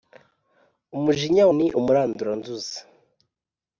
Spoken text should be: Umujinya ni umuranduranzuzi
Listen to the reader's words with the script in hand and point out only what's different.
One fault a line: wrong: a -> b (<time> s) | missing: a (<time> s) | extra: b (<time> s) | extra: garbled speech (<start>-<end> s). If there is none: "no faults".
no faults